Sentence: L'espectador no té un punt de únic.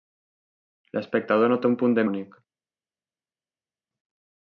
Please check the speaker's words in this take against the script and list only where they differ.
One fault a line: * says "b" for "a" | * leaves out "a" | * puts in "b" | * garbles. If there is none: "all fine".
all fine